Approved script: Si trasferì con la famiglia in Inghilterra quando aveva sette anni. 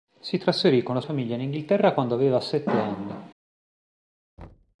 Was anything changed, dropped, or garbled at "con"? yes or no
no